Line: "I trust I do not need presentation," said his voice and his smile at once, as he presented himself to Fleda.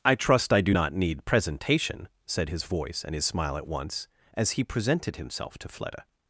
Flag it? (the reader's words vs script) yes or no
no